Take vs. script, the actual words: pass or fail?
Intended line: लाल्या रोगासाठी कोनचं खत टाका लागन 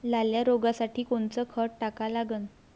pass